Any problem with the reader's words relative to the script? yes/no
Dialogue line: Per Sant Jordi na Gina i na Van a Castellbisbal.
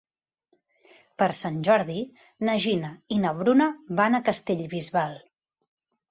yes